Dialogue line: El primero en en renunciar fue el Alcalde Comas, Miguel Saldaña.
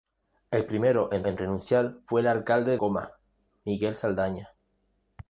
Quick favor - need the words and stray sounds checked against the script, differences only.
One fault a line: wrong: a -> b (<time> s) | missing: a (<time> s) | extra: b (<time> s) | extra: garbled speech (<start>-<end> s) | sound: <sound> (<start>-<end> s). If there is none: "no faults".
no faults